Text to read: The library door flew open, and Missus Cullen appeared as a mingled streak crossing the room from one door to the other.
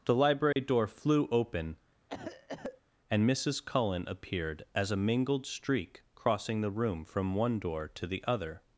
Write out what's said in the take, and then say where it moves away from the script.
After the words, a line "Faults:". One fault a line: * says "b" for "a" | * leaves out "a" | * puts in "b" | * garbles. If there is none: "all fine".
The library door flew open, and Missus Cullen appeared as a mingled streak crossing the room from one door to the other.
Faults:
all fine